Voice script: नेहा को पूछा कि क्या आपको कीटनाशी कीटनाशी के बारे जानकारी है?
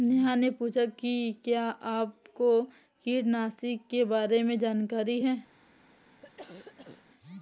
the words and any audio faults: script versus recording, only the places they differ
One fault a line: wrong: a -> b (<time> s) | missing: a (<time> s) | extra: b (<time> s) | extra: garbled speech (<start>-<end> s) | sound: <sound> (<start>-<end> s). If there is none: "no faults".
wrong: को -> ने (0.3 s)
missing: कीटनाशी (3.8 s)
extra: में (4.4 s)
sound: cough (6.2-7.0 s)